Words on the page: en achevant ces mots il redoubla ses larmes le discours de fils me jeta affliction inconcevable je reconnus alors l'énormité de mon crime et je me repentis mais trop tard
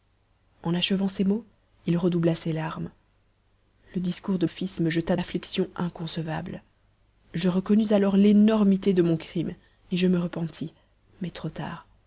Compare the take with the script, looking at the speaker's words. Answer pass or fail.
pass